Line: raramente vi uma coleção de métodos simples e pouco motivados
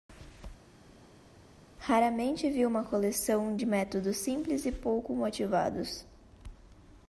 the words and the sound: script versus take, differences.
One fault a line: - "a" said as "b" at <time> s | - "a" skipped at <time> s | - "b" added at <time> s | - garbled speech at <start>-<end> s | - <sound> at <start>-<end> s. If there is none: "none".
none